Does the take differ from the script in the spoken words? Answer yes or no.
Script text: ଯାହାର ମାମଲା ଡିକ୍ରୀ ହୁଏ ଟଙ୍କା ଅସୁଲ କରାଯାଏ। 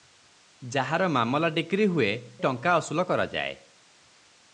no